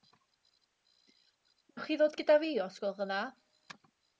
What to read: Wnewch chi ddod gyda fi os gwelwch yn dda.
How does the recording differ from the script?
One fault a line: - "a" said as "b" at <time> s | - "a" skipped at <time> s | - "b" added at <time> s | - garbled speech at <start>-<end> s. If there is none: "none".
none